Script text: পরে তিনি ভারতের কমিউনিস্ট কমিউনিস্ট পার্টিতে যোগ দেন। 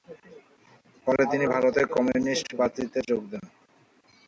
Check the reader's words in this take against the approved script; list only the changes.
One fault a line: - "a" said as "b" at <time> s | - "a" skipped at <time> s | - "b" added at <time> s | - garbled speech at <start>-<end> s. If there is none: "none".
- "কমিউনিস্ট" skipped at 2.5 s